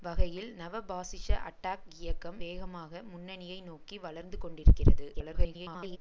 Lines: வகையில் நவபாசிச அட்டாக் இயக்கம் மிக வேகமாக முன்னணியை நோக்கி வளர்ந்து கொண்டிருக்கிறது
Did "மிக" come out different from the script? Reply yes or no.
yes